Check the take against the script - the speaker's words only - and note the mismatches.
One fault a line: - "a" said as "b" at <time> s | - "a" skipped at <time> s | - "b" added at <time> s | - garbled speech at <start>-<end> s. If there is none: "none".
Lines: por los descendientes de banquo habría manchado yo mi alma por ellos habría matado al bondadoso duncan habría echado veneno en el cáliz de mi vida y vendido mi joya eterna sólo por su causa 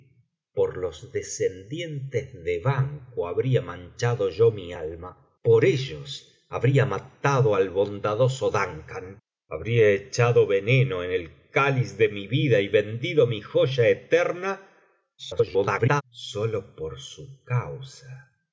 - garbled speech at 15.2-16.0 s